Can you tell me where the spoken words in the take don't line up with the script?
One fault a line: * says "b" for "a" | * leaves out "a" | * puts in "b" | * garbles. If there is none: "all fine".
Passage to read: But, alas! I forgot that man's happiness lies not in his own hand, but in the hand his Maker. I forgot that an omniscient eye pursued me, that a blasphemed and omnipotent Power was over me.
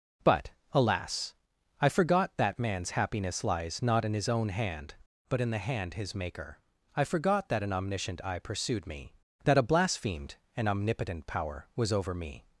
all fine